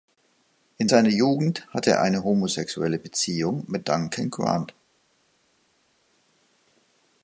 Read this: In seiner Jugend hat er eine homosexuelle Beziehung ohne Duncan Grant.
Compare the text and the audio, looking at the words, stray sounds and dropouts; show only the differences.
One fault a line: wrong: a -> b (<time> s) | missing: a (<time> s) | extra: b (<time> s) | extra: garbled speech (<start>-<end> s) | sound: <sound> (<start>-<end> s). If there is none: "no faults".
wrong: hat -> hatte (1.7 s)
wrong: ohne -> mit (3.7 s)